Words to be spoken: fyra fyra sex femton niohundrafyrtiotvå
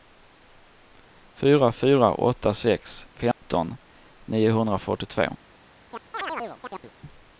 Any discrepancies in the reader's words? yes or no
yes